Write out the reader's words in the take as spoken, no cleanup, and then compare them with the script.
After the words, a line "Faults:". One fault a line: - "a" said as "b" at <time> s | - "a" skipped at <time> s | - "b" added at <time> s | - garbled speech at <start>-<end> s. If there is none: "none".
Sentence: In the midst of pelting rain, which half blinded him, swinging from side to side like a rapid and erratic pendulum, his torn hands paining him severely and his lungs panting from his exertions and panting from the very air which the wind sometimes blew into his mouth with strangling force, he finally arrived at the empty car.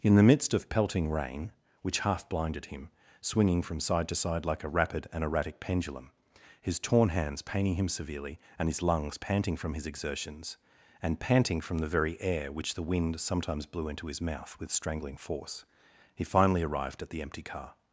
In the midst of pelting rain, which half blinded him, swinging from side to side like a rapid and erratic pendulum, his torn hands paining him severely and his lungs panting from his exertions and panting from the very air which the wind sometimes blew into his mouth with strangling force, he finally arrived at the empty car.
Faults:
none